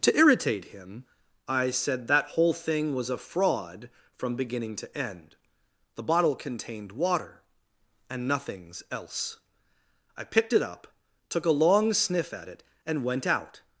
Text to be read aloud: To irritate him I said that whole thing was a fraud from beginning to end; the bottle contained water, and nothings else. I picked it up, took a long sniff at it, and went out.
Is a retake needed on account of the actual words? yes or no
no